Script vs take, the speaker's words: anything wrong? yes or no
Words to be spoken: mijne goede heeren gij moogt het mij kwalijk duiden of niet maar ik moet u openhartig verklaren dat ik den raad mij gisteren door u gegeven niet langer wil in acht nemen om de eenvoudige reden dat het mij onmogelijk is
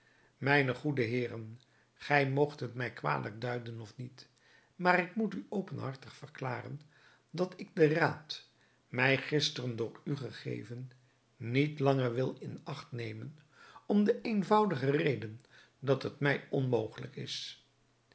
no